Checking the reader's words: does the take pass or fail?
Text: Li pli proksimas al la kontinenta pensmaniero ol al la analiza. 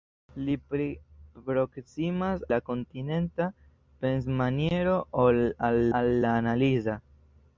fail